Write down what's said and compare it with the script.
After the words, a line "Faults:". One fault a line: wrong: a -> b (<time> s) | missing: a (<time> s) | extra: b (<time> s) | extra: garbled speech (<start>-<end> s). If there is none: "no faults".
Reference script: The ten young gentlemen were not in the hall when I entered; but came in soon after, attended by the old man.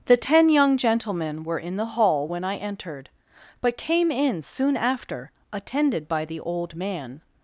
The ten young gentlemen were in the hall when I entered; but came in soon after, attended by the old man.
Faults:
missing: not (1.6 s)